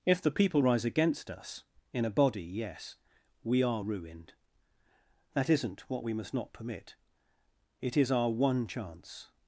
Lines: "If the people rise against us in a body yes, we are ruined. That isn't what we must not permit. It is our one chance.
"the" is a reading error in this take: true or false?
false